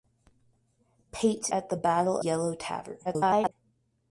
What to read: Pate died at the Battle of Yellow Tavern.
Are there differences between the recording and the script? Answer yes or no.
yes